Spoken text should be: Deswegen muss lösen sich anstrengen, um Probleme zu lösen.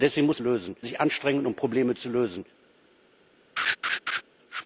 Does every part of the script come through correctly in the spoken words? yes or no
yes